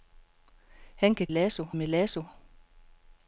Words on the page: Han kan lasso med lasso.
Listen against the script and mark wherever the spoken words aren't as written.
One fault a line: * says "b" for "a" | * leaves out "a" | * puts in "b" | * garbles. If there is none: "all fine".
all fine